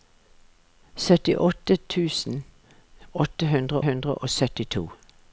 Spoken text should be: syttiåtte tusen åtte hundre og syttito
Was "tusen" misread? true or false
false